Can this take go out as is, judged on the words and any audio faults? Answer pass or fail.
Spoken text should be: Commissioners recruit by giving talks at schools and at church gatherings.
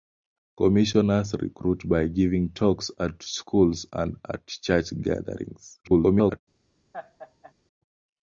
fail